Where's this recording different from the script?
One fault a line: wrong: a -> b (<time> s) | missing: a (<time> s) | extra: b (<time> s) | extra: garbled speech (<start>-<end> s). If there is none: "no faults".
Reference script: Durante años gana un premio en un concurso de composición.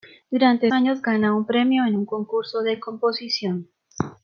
no faults